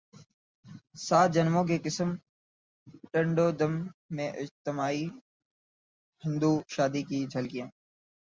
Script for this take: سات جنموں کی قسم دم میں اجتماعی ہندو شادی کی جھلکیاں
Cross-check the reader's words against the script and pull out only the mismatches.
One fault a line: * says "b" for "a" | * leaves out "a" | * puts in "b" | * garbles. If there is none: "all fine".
* puts in "ٹنڈو"